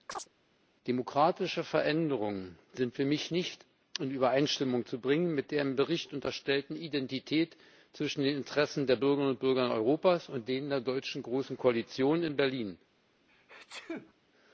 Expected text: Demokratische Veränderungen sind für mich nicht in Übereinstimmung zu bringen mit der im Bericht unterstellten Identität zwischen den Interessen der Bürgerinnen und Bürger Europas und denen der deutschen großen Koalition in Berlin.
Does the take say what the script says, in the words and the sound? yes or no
no